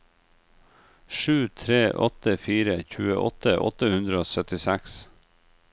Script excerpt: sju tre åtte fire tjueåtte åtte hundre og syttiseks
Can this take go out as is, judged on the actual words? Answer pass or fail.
pass